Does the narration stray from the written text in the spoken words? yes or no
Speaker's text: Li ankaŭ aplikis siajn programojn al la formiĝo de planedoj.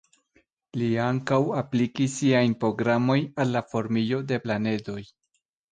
no